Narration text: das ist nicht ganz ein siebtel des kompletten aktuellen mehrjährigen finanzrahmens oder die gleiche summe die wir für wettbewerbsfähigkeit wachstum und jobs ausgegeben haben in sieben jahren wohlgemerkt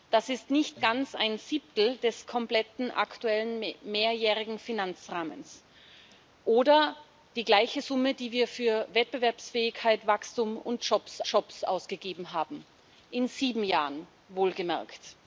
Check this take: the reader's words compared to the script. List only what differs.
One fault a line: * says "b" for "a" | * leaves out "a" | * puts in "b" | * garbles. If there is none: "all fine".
* puts in "jobs"